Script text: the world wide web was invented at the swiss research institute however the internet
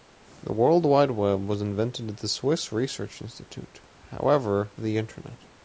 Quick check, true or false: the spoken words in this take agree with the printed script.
true